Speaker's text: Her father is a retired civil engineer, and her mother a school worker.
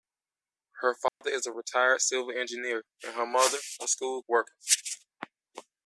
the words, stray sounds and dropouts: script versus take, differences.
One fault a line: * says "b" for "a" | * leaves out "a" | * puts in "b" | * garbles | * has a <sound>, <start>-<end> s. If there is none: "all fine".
* has a dropout, 1.1-1.2 s